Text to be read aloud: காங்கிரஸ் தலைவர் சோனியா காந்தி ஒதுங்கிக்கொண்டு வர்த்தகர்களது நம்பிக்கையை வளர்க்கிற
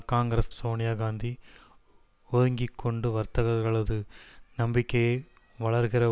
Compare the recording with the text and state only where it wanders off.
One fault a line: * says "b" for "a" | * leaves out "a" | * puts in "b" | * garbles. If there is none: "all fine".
* leaves out "தலைவர்"